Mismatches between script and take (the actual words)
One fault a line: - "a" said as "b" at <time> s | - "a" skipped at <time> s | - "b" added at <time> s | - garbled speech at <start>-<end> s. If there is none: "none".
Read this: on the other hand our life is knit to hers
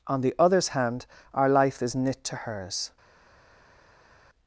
- "other" said as "others" at 0.4 s